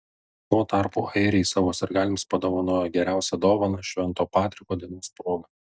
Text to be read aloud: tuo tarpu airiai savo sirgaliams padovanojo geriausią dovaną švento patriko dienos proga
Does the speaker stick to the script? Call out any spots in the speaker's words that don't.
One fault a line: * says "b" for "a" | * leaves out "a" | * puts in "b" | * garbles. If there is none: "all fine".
all fine